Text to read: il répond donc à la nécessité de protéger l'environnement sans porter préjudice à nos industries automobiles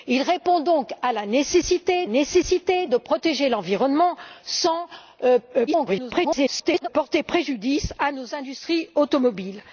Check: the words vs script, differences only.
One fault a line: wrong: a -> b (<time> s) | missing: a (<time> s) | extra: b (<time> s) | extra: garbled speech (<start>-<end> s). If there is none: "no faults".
extra: nécessité (2.1 s)
extra: garbled speech (5.7-6.9 s)